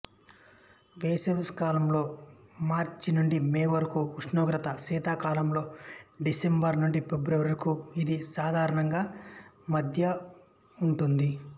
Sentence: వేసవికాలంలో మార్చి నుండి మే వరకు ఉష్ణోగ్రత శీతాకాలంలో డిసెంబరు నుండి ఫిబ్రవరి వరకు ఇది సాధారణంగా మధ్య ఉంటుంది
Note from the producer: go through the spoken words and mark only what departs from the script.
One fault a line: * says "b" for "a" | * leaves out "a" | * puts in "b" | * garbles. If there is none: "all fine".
all fine